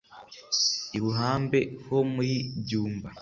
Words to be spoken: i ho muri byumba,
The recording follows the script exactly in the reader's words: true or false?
false